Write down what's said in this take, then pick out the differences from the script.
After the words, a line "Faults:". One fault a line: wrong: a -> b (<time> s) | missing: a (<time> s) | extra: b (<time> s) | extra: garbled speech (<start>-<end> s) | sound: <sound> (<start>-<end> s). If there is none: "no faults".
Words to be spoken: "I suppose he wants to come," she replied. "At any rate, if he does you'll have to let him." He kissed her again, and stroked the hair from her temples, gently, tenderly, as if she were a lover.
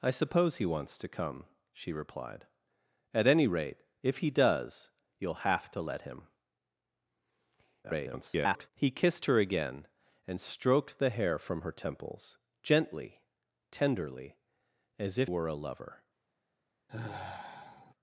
"I suppose he wants to come," she replied. "At any rate, if he does you'll have to let him." [garbled] He kissed her again, and stroked the hair from her temples, gently, tenderly, as if were a lover.
Faults:
extra: garbled speech (7.8-8.7 s)
missing: she (15.3 s)
sound: sigh (16.9-17.9 s)